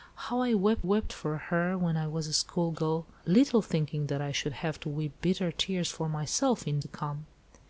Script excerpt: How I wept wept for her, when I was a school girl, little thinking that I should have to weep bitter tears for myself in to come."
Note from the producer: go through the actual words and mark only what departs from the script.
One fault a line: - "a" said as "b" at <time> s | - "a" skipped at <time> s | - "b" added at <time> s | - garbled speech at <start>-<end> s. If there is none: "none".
none